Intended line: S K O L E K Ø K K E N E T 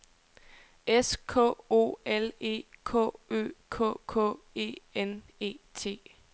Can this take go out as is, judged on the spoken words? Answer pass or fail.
pass